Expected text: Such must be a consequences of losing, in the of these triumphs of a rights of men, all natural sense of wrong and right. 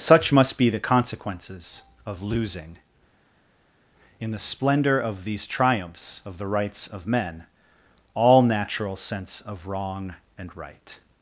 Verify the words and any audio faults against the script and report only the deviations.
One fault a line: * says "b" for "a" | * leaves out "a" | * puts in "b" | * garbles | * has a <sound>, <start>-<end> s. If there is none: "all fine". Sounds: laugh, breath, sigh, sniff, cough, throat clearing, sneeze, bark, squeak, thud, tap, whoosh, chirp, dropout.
* says "the" for "a"
* puts in "splendor"
* says "the" for "a"